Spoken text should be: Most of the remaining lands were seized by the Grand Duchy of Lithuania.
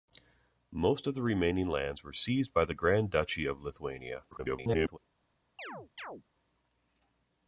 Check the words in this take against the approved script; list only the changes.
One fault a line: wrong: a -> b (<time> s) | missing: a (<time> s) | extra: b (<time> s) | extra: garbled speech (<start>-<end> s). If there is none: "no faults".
extra: garbled speech (4.3-5.0 s)